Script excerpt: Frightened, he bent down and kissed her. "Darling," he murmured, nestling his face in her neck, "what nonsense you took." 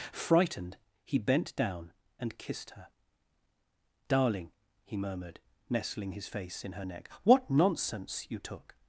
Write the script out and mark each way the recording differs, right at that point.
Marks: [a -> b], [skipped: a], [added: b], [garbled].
Frightened, he bent down and kissed her. "Darling," he murmured, nestling his face in her neck, "what nonsense you took."